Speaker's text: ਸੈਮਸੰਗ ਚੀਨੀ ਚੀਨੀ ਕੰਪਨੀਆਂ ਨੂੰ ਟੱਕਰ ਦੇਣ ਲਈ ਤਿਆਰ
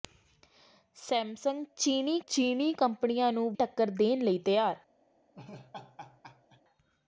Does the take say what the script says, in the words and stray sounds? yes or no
no